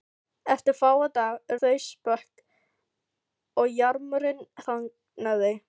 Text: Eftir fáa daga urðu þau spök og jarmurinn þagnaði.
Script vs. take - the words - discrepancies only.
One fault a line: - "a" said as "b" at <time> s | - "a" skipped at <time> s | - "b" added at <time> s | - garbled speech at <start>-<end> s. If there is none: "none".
- "urðu" skipped at 1.6 s